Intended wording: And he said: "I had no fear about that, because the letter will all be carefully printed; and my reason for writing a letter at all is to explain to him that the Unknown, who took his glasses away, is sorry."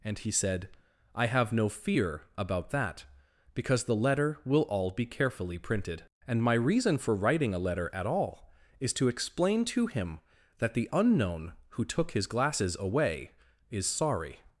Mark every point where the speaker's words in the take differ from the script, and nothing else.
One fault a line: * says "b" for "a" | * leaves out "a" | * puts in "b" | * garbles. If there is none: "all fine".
* says "have" for "had"